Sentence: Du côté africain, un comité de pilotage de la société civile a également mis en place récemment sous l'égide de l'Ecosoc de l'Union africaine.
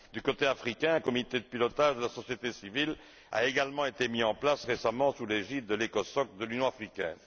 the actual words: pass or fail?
fail